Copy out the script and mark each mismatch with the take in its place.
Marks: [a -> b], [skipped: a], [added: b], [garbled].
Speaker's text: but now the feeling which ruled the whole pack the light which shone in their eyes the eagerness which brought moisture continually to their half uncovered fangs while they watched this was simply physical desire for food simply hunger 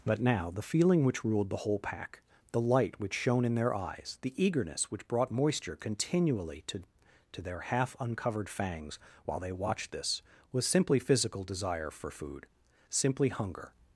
but now the feeling which ruled the whole pack the light which shone in their eyes the eagerness which brought moisture continually to [added: to] their half uncovered fangs while they watched this was simply physical desire for food simply hunger